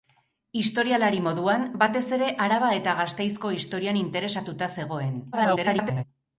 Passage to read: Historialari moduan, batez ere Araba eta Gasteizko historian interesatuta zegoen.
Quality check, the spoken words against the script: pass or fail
fail